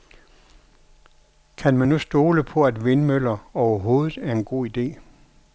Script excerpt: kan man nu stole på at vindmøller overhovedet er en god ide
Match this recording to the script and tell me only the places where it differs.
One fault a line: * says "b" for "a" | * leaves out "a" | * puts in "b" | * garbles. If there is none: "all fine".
all fine